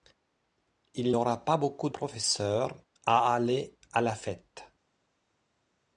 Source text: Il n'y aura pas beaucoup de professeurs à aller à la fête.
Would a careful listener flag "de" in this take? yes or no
yes